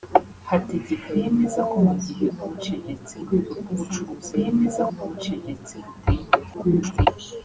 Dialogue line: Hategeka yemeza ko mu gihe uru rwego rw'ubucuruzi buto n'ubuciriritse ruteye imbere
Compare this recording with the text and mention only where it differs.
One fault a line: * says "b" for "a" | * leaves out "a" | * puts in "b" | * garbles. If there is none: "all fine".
* says "n'ubuciriritse" for "uru"
* says "yemeza" for "buto"
* garbles